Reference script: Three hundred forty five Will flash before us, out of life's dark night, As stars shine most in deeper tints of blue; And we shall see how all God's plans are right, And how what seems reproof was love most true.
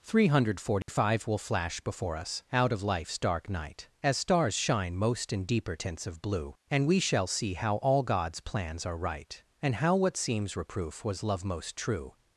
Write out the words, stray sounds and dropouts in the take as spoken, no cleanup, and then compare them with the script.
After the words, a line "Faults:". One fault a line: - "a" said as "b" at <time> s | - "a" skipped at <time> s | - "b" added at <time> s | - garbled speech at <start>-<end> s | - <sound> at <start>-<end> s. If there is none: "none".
Three hundred forty five Will flash before us, out of life's dark night, As stars shine most in deeper tints of blue; And we shall see how all God's plans are right, And how what seems reproof was love most true.
Faults:
- dropout at 0.8-0.9 s